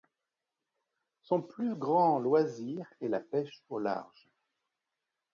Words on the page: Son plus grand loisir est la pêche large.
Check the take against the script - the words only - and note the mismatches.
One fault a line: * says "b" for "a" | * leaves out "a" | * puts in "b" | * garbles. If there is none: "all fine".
* puts in "au"